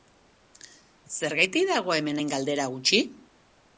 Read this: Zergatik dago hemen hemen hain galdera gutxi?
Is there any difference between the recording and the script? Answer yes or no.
yes